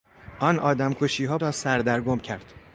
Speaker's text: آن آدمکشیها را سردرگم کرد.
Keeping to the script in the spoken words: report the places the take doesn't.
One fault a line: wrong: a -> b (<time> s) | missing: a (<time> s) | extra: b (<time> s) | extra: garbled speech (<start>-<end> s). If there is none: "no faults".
no faults